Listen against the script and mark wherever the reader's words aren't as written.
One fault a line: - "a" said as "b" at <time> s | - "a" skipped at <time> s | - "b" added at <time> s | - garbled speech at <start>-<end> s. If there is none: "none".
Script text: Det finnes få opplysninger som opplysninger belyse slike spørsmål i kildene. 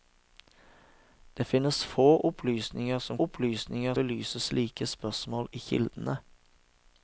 none